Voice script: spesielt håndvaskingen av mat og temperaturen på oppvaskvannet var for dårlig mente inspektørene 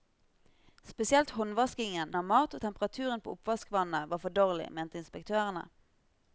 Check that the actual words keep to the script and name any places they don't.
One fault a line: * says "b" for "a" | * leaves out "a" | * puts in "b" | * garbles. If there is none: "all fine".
all fine